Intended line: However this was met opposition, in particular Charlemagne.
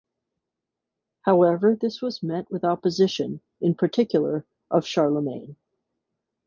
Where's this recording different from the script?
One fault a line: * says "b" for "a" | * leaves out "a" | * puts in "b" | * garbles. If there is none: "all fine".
* puts in "with"
* puts in "of"